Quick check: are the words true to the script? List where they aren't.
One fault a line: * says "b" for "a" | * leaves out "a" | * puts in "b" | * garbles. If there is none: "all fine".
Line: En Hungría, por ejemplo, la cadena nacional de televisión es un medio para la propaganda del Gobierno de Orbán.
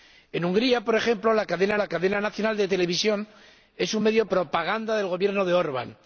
* puts in "la cadena"
* leaves out "para la"